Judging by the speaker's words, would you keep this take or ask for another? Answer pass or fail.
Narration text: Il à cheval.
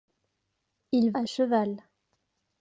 pass